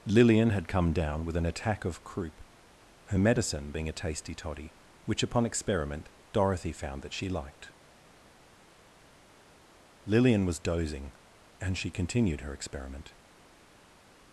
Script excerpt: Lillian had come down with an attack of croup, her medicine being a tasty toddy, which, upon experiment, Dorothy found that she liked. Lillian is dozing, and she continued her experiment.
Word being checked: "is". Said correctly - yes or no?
no